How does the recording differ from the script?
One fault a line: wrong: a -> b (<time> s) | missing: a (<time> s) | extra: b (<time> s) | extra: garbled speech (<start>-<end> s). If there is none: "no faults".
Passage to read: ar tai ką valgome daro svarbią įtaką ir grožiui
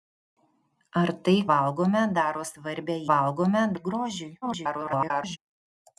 missing: ką (1.4 s)
wrong: įtaką -> valgome (3.1 s)
extra: garbled speech (4.4-5.4 s)